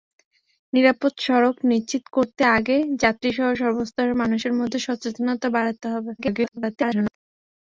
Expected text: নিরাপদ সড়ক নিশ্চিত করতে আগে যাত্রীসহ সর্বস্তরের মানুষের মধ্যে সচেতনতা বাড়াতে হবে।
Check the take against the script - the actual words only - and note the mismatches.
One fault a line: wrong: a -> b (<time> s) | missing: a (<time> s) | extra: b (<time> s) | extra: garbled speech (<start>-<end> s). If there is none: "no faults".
extra: garbled speech (6.2-7.2 s)